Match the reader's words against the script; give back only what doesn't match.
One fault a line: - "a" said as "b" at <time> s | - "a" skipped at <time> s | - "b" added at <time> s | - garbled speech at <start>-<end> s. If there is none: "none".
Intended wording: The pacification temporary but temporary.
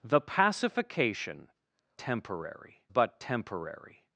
none